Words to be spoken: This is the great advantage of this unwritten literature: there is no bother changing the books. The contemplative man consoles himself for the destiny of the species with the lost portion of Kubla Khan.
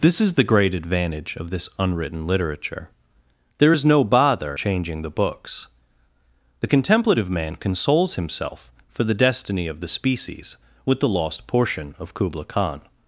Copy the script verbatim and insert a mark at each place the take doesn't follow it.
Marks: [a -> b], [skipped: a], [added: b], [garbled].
This is the great advantage of this unwritten literature: there is no bother changing the books. The contemplative man consoles himself for the destiny of the species with the lost portion of Kubla Khan.